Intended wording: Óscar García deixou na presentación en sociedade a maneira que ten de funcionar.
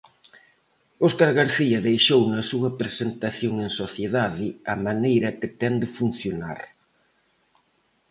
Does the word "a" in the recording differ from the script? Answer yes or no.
no